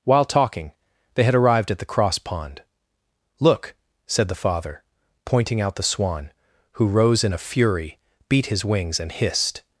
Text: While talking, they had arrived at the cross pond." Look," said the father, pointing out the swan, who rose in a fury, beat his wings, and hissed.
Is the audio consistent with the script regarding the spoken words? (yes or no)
yes